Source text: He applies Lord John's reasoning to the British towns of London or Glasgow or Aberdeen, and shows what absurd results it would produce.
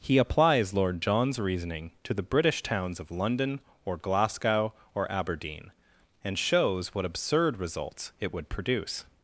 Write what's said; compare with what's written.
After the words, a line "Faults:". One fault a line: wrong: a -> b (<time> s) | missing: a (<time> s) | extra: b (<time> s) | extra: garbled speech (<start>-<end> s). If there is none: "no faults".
He applies Lord John's reasoning to the British towns of London or Glasgow or Aberdeen, and shows what absurd results it would produce.
Faults:
no faults